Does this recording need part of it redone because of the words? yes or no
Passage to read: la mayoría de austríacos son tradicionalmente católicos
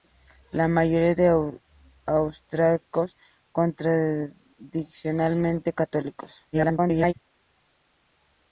yes